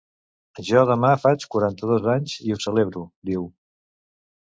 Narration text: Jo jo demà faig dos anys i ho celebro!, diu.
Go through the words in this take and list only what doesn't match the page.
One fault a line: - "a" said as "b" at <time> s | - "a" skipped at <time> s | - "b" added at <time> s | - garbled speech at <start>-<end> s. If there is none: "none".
- "jo" skipped at 0.8 s
- "quaranta" added at 1.6 s